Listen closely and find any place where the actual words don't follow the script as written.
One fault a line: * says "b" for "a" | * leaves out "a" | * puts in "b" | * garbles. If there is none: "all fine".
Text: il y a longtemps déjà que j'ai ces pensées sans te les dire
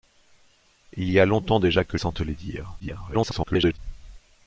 * leaves out "j'ai ces pensées"
* garbles